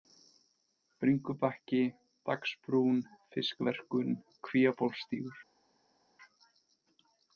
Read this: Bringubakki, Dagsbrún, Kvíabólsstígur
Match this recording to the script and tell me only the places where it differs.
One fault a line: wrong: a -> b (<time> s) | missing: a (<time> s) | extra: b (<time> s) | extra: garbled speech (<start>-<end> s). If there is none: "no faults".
extra: Fiskverkun (3.3 s)